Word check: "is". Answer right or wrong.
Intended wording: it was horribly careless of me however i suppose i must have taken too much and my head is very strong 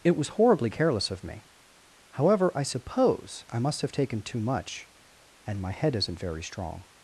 wrong